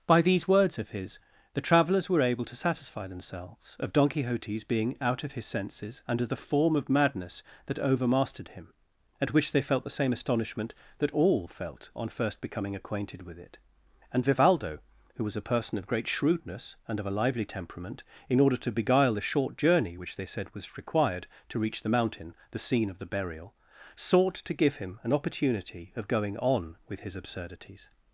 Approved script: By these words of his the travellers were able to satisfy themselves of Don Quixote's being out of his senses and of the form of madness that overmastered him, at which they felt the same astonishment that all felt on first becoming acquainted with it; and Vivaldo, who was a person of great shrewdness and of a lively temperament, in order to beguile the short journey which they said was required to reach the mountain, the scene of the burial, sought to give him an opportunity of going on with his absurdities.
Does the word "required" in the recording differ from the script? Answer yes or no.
no